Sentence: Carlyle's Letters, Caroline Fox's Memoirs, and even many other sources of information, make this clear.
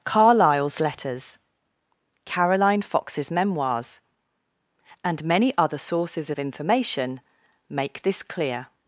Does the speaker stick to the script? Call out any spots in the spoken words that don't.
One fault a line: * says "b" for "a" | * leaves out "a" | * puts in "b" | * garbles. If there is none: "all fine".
* leaves out "even"